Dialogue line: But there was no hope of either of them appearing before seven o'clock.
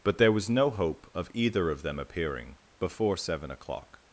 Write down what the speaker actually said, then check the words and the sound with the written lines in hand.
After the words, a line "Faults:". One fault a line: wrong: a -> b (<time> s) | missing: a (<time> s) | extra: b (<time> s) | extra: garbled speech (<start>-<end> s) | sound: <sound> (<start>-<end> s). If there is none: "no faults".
But there was no hope of either of them appearing before seven o'clock.
Faults:
no faults